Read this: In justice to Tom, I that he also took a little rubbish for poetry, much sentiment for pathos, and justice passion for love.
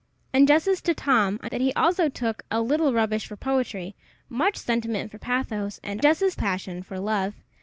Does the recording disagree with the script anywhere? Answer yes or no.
no